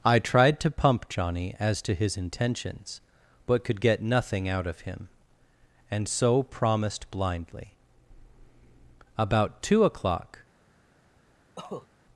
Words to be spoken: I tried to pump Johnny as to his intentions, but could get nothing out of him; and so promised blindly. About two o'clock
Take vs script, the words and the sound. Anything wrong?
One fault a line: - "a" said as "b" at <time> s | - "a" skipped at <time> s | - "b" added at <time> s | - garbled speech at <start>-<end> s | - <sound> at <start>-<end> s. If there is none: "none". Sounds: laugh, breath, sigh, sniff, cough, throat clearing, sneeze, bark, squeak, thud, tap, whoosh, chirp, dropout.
- cough at 11.6-11.9 s